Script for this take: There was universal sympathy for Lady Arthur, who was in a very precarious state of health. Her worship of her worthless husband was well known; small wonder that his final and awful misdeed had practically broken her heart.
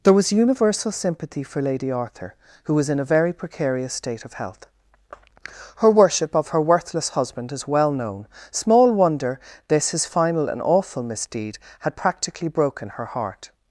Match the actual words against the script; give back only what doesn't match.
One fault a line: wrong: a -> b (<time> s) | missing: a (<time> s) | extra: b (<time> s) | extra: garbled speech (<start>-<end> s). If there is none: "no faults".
wrong: was -> is (7.5 s)
wrong: that -> this (9.7 s)